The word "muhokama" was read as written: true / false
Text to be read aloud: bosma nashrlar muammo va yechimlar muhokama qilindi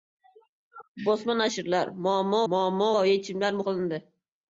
false